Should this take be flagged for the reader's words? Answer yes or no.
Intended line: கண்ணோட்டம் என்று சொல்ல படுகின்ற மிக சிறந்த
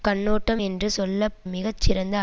yes